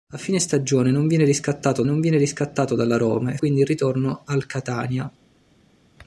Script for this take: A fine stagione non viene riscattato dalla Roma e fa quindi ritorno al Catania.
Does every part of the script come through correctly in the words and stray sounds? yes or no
no